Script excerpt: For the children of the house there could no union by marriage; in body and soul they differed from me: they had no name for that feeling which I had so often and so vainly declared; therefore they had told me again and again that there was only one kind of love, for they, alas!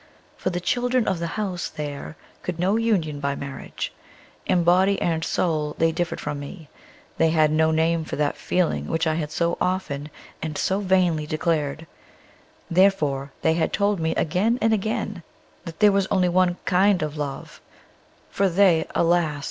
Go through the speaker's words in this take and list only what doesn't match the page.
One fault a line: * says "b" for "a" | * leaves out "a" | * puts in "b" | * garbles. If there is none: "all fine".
all fine